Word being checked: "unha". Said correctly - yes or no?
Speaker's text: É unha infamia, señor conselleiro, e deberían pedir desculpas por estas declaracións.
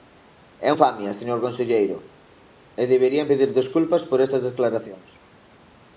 no